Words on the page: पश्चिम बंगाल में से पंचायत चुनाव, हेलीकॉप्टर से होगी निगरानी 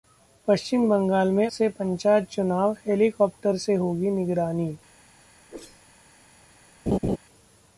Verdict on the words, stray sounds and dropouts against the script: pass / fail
fail